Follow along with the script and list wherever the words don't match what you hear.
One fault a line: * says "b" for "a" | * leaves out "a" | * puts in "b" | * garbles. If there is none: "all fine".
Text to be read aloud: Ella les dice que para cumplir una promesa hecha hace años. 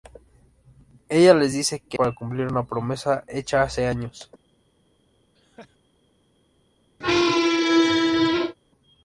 all fine